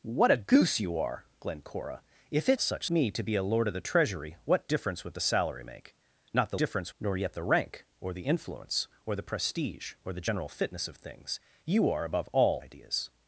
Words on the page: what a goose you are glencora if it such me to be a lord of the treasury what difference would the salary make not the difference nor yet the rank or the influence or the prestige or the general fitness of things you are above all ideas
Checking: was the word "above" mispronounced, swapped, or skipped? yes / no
no